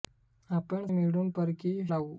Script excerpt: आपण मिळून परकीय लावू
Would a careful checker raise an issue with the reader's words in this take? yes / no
no